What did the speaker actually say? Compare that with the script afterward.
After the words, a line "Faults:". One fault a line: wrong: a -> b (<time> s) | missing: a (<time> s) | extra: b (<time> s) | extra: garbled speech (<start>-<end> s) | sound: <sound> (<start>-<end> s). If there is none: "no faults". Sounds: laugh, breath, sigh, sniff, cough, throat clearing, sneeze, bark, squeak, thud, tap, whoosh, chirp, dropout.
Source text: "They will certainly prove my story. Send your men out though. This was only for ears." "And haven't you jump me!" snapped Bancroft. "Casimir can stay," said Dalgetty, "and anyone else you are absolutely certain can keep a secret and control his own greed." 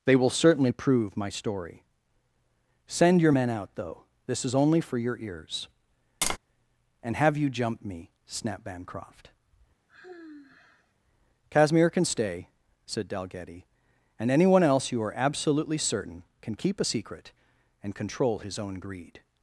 "They will certainly prove my story. Send your men out though. This is only for your ears." "And have you jump me!" snapped Bancroft. "Casimir can stay," said Dalgetty, "and anyone else you are absolutely certain can keep a secret and control his own greed."
Faults:
wrong: was -> is (4.4 s)
extra: your (5.0 s)
sound: tap (6.2-6.4 s)
wrong: haven't -> have (7.2 s)
sound: sigh (9.9-10.9 s)